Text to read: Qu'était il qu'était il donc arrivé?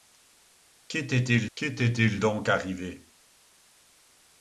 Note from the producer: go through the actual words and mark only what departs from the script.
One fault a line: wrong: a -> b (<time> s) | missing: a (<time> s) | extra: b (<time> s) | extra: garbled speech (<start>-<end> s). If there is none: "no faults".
no faults